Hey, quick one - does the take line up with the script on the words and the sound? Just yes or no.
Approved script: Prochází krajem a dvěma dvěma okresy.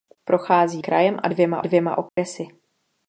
no